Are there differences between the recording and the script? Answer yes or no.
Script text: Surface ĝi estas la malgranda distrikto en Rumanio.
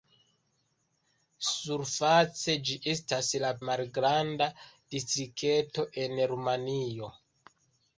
no